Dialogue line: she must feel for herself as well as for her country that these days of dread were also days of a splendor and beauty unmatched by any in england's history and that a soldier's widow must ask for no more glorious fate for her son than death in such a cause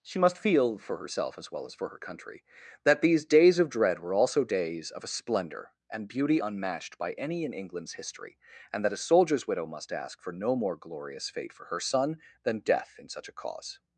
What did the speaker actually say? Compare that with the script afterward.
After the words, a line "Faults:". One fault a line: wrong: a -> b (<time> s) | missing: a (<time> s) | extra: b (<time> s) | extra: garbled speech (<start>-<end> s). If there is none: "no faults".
she must feel for herself as well as for her country that these days of dread were also days of a splendor and beauty unmatched by any in england's history and that a soldier's widow must ask for no more glorious fate for her son than death in such a cause
Faults:
no faults